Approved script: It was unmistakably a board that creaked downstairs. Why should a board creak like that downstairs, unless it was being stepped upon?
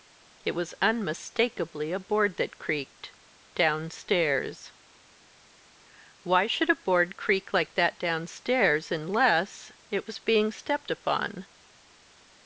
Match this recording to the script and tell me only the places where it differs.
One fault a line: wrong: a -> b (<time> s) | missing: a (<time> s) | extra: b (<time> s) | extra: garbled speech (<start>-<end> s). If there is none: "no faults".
no faults